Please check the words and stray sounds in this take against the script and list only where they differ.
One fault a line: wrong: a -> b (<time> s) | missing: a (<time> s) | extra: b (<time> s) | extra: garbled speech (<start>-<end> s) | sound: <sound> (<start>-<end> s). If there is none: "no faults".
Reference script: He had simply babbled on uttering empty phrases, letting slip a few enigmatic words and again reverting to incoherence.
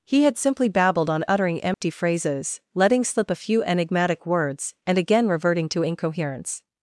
sound: dropout (1.7-1.8 s)